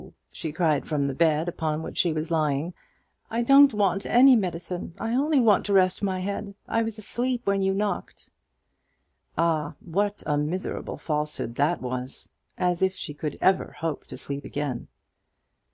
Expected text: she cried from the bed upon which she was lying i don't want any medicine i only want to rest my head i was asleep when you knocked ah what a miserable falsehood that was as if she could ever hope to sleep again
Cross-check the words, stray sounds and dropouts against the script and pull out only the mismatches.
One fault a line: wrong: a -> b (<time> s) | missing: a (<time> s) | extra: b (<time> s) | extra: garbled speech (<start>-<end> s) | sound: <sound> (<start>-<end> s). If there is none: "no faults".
no faults